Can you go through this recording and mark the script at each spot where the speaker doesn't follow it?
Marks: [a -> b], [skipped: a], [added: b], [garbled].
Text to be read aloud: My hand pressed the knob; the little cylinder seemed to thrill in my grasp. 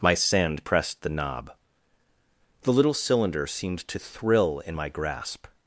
My [hand -> sand] pressed the knob; the little cylinder seemed to thrill in my grasp.